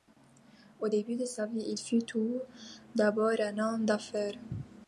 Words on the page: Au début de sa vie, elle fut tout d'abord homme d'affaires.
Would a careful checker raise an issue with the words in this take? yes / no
yes